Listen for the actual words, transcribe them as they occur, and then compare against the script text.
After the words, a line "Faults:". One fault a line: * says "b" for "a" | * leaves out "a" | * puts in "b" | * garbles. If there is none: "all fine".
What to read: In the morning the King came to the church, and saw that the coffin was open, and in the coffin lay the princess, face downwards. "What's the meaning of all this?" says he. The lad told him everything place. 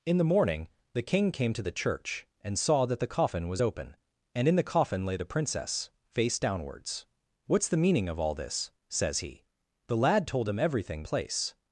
In the morning the King came to the church, and saw that the coffin was open, and in the coffin lay the princess, face downwards. "What's the meaning of all this?" says he. The lad told him everything place.
Faults:
all fine